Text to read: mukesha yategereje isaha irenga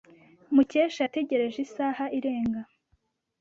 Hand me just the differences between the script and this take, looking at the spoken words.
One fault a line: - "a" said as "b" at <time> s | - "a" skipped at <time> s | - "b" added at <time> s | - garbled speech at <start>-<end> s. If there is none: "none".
none